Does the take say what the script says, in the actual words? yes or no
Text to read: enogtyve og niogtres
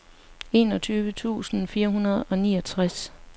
no